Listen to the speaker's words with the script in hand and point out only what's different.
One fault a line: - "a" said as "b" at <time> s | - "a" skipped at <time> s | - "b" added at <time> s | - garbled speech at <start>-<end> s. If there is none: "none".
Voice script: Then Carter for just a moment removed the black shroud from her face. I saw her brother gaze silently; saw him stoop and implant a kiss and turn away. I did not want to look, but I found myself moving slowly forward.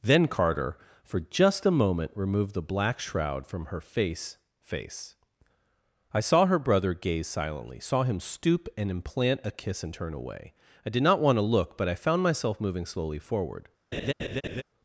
- "face" added at 4.6 s